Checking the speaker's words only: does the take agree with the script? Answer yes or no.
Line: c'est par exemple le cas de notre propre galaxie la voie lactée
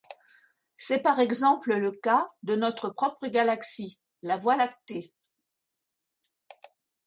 yes